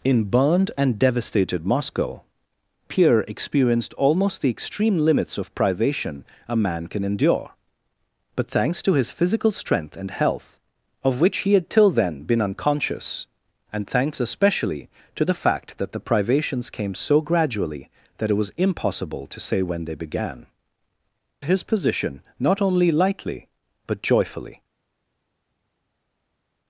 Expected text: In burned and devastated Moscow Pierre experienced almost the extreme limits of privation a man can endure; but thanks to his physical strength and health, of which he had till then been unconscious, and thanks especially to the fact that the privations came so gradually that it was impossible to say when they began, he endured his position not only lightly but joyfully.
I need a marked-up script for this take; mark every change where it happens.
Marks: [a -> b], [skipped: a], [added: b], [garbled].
In burned and devastated Moscow Pierre experienced almost the extreme limits of privation a man can endure; but thanks to his physical strength and health, of which he had till then been unconscious, and thanks especially to the fact that the privations came so gradually that it was impossible to say when they began, [skipped: he endured] his position not only lightly but joyfully.